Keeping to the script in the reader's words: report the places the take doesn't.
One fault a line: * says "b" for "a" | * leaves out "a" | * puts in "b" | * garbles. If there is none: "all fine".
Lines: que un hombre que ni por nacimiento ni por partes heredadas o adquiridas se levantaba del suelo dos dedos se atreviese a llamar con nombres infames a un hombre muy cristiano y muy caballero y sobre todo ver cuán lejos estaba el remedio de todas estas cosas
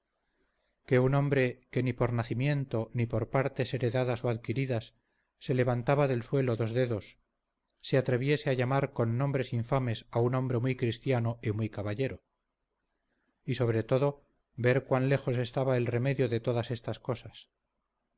all fine